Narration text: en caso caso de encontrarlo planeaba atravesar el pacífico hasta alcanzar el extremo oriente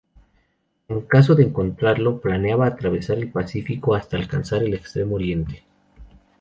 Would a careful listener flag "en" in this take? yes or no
no